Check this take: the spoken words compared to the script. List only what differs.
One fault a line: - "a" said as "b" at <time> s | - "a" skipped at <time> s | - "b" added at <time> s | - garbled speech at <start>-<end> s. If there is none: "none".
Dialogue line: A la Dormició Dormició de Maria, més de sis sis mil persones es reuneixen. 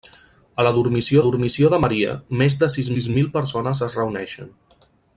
none